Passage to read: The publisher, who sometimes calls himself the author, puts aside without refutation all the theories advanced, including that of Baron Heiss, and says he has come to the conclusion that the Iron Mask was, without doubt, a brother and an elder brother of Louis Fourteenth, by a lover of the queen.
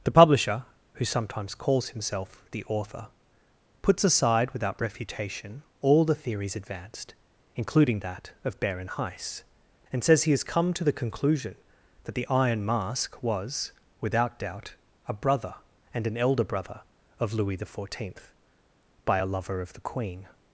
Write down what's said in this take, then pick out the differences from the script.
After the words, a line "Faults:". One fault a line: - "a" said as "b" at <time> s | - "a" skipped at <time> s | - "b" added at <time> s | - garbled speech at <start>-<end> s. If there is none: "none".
The publisher, who sometimes calls himself the author, puts aside without refutation all the theories advanced, including that of Baron Heiss, and says he has come to the conclusion that the Iron Mask was, without doubt, a brother and an elder brother of Louis the Fourteenth, by a lover of the queen.
Faults:
- "the" added at 17.6 s